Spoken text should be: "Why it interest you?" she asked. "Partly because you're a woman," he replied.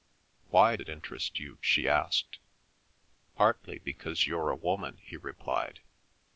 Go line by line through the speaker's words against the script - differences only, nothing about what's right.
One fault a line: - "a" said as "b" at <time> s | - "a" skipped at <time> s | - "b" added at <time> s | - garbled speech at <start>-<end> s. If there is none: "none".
none